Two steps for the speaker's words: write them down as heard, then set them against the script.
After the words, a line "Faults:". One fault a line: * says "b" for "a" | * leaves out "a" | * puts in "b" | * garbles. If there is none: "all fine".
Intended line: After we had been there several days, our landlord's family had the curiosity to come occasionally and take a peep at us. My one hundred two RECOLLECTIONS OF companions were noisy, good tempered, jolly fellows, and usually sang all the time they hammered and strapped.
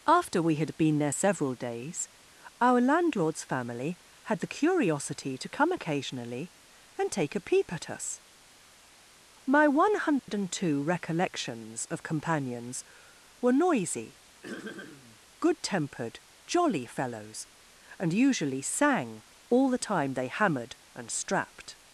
After we had been there several days, our landlord's family had the curiosity to come occasionally and take a peep at us. My one hundred two RECOLLECTIONS OF companions were noisy, good tempered, jolly fellows, and usually sang all the time they hammered and strapped.
Faults:
all fine